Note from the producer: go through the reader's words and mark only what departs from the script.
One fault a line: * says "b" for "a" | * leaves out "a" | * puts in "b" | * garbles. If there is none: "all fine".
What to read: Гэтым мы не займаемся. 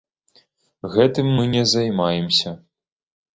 all fine